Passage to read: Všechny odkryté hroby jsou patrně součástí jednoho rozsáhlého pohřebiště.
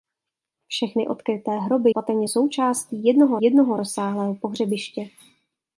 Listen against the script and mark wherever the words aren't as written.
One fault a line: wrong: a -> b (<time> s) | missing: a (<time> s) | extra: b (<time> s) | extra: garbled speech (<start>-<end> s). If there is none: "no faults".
missing: jsou (1.9 s)
extra: jednoho (3.4 s)